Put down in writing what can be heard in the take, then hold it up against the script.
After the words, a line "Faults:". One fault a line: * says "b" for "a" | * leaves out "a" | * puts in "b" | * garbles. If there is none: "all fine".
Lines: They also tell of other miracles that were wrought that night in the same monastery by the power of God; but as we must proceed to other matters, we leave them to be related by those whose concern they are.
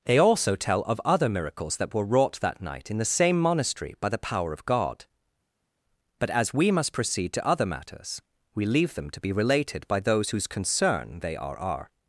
They also tell of other miracles that were wrought that night in the same monastery by the power of God; but as we must proceed to other matters, we leave them to be related by those whose concern they are are.
Faults:
* puts in "are"